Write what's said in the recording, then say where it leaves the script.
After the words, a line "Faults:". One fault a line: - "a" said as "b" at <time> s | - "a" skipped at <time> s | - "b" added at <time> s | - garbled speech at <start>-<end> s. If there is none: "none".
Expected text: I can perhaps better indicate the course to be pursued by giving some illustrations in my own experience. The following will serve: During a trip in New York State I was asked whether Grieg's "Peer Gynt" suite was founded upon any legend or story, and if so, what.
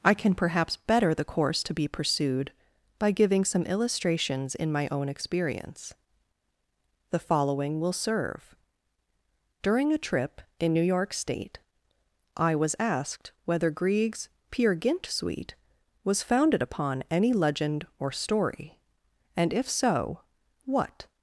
I can perhaps better the course to be pursued by giving some illustrations in my own experience. The following will serve: During a trip in New York State I was asked whether Grieg's "Peer Gynt" suite was founded upon any legend or story, and if so, what.
Faults:
- "indicate" skipped at 1.1 s